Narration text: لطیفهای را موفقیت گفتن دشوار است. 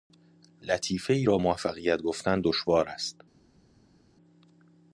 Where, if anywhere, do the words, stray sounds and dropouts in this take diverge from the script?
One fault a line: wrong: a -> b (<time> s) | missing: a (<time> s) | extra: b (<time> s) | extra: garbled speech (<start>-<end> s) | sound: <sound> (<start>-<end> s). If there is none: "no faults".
no faults